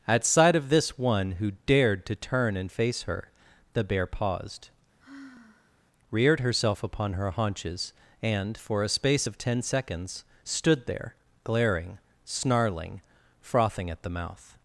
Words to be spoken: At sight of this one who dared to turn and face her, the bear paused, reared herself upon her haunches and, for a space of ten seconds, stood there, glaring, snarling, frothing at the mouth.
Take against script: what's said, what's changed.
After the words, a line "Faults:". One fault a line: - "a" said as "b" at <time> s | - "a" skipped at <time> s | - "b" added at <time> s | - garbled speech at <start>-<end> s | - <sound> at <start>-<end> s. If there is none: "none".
At sight of this one who dared to turn and face her, the bear paused, reared herself upon her haunches and, for a space of ten seconds, stood there, glaring, snarling, frothing at the mouth.
Faults:
- sigh at 5.0-5.8 s